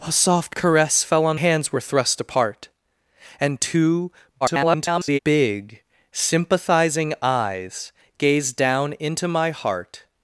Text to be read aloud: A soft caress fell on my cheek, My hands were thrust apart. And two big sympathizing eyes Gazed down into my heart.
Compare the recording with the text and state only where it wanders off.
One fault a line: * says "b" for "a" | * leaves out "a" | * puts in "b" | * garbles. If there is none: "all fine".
* leaves out "my cheek My"
* garbles